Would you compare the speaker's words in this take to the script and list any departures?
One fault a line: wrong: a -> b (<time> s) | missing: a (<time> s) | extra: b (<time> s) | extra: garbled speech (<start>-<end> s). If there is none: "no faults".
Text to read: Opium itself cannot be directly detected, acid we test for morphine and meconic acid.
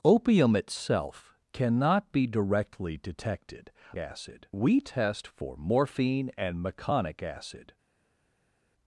no faults